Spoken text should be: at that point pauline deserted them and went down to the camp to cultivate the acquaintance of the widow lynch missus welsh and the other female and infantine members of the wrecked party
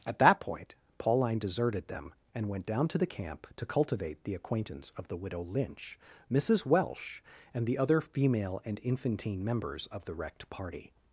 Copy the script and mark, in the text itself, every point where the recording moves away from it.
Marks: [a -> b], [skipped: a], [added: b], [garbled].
at that point pauline deserted them and went down to the camp to cultivate the acquaintance of the widow lynch missus welsh and the other female and infantine members of the wrecked party